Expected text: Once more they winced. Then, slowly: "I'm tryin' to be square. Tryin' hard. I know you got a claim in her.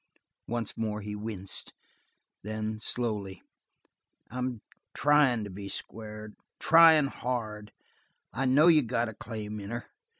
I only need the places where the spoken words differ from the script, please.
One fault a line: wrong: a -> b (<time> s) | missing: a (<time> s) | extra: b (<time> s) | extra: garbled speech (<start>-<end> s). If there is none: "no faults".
wrong: they -> he (1.0 s)